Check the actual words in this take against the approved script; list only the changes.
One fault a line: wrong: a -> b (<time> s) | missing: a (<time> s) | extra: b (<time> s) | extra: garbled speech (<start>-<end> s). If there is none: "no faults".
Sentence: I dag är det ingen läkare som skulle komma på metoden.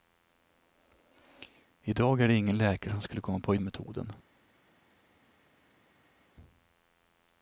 no faults